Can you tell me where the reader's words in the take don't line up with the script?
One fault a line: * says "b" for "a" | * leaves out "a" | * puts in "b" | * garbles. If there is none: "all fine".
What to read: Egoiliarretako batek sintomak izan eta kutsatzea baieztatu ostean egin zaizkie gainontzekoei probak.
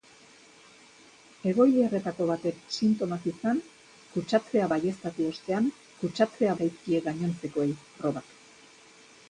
* leaves out "eta"
* says "kutsatzea" for "egin"